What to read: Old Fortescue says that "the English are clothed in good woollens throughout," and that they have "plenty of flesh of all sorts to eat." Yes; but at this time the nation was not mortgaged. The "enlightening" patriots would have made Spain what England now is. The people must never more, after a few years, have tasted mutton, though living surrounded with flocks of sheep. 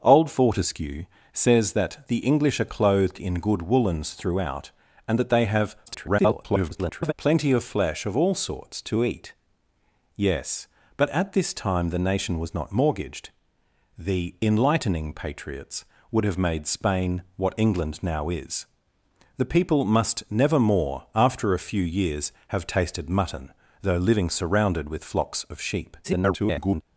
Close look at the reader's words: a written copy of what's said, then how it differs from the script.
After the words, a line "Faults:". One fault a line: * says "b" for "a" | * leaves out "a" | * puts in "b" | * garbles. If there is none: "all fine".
Old Fortescue says that "the English are clothed in good woollens throughout," and that they have [garbled] "plenty of flesh of all sorts to eat." Yes; but at this time the nation was not mortgaged. The "enlightening" patriots would have made Spain what England now is. The people must never more, after a few years, have tasted mutton, though living surrounded with flocks of sheep. [garbled]
Faults:
* garbles
* garbles